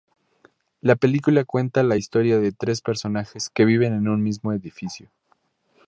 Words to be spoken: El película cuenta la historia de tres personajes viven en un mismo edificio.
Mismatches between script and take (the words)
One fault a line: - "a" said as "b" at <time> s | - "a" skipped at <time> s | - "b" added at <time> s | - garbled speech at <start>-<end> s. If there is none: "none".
- "El" said as "La" at 0.8 s
- "que" added at 3.5 s